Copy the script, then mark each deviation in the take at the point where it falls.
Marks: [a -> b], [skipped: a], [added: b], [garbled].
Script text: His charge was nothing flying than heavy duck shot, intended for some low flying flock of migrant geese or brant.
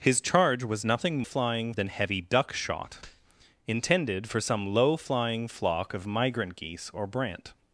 His charge was nothing flying than heavy duck shot, intended for some low flying flock of migrant geese or brant.